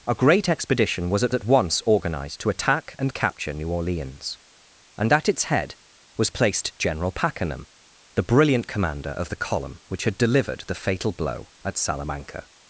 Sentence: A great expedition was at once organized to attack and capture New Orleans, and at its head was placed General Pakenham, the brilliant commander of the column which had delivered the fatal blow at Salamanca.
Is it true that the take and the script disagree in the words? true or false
true